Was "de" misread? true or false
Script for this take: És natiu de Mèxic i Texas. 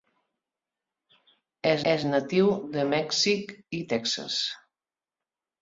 false